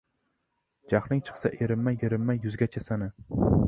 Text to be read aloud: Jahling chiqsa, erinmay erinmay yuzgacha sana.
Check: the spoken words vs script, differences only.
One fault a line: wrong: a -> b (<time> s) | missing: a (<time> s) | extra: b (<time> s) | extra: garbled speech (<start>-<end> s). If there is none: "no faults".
no faults